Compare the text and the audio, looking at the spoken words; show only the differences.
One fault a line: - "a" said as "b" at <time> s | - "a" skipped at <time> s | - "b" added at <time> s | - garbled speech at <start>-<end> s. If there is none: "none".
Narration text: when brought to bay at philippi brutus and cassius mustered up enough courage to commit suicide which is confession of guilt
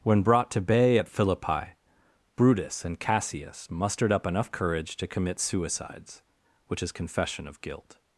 - "suicide" said as "suicides" at 5.4 s